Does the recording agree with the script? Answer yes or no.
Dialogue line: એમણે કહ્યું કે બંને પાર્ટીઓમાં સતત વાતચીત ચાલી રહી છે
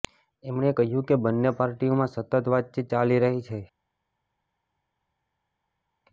yes